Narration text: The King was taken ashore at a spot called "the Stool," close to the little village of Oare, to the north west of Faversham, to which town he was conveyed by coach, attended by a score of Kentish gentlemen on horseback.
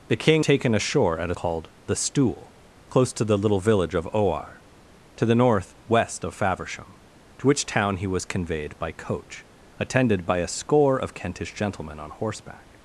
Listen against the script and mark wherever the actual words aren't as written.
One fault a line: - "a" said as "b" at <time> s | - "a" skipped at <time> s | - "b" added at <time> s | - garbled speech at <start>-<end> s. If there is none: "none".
- "was" skipped at 0.5 s
- "spot" skipped at 1.3 s